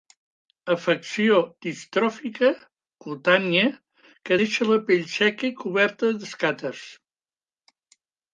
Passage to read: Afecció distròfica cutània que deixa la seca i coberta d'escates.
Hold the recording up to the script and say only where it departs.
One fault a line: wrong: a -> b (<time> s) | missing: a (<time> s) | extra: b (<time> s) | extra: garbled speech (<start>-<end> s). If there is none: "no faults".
extra: pell (4.9 s)